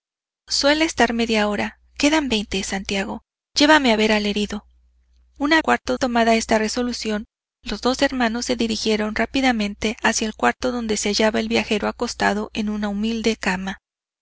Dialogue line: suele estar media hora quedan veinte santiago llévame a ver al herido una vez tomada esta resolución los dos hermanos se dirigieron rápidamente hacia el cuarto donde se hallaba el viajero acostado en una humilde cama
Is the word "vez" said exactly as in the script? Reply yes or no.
no